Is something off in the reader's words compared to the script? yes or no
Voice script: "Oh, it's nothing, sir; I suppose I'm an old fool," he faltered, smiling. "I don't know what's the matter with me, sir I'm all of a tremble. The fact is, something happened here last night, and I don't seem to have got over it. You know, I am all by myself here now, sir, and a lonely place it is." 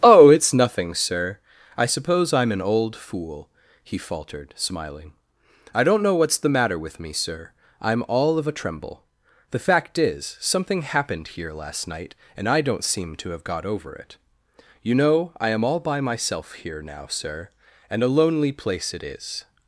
no